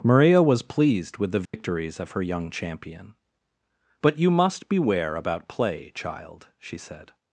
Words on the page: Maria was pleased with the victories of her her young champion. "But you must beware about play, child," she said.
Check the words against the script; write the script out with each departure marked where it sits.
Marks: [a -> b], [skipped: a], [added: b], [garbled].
Maria was pleased with the victories of her [skipped: her] young champion. "But you must beware about play, child," she said.